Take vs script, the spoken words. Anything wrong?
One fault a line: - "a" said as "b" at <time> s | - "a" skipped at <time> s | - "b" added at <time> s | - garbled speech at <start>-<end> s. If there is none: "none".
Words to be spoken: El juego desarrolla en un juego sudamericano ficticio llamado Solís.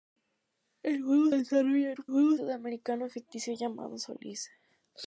none